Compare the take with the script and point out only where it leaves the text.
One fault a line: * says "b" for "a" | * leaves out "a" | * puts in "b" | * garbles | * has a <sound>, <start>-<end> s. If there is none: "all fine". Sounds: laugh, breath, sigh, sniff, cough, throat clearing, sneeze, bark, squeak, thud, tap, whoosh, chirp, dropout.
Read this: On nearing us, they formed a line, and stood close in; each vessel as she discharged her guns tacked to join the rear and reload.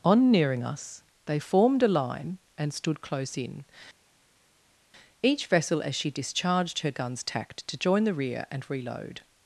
all fine